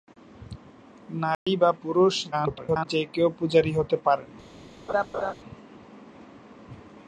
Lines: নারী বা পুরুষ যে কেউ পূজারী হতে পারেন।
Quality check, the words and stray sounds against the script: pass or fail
fail